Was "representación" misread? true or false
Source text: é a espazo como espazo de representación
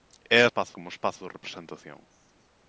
false